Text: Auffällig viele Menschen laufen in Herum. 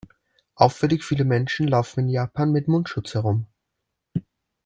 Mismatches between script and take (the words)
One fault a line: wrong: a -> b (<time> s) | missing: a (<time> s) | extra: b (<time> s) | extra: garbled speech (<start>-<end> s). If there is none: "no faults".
extra: Japan mit Mundschutz (2.1 s)